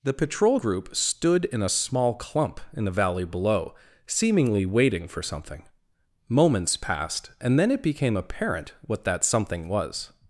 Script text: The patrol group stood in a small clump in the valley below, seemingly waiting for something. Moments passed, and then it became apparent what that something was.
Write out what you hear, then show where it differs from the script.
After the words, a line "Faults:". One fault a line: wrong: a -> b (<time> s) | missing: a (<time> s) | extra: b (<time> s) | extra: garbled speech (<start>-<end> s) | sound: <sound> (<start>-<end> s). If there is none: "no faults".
The patrol group stood in a small clump in the valley below, seemingly waiting for something. Moments passed, and then it became apparent what that something was.
Faults:
no faults